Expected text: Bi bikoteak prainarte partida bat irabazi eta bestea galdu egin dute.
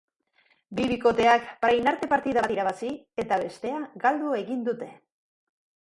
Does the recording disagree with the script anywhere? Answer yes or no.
no